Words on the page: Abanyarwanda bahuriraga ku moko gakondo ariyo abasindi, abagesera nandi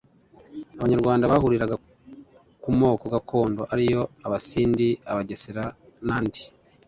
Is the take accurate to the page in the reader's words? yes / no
yes